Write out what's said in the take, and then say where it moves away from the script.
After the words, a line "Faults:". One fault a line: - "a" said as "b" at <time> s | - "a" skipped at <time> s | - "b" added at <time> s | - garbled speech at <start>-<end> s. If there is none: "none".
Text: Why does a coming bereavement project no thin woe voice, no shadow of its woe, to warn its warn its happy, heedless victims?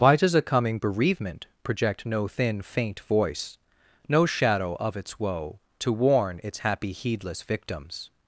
Why does a coming bereavement project no thin faint voice, no shadow of its woe, to warn its happy, heedless victims?
Faults:
- "woe" said as "faint" at 2.6 s
- "warn its" skipped at 6.6 s